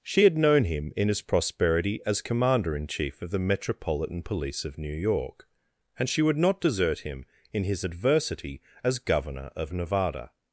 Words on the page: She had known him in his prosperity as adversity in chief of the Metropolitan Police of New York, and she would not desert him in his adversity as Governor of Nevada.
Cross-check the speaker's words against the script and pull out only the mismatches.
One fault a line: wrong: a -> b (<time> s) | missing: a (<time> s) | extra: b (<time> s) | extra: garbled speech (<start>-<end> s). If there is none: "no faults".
wrong: adversity -> commander (2.2 s)